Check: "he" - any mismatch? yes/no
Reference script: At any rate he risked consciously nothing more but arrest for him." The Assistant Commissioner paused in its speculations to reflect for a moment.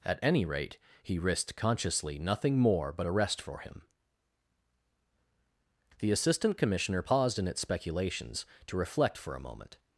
no